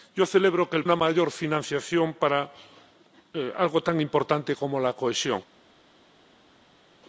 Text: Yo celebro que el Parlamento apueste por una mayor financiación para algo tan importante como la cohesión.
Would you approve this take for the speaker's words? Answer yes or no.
no